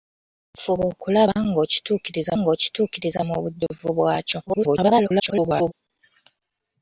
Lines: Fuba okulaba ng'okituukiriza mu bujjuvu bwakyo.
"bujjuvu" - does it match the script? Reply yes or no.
yes